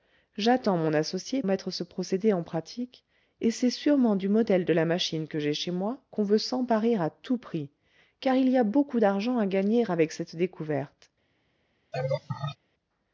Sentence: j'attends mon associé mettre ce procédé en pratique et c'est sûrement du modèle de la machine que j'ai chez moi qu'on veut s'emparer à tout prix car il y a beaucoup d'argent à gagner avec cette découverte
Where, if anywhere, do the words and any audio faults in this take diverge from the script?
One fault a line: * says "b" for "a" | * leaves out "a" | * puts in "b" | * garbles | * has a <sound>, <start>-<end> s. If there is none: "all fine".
* has a laugh, 11.9-12.6 s